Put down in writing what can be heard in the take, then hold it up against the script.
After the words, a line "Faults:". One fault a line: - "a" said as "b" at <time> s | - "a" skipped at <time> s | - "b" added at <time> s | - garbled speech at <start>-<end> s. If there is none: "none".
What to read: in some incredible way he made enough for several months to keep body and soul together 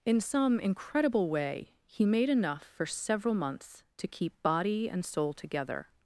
in some incredible way he made enough for several months to keep body and soul together
Faults:
none